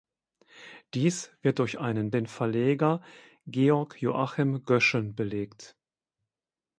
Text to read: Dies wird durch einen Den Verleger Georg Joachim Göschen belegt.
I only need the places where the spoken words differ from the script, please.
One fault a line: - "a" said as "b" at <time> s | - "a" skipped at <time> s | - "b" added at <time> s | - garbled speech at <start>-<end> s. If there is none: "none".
none